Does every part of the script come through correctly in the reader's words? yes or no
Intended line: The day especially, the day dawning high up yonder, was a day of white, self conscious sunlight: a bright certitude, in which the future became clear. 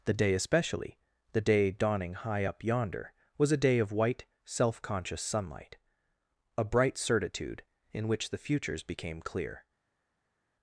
no